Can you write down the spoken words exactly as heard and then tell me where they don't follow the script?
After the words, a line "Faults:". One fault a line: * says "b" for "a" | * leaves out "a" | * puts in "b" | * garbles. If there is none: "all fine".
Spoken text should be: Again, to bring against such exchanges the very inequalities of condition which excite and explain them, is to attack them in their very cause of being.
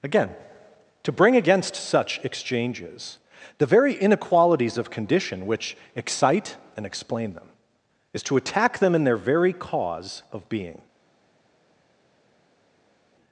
Again, to bring against such exchanges the very inequalities of condition which excite and explain them, is to attack them in their very cause of being.
Faults:
all fine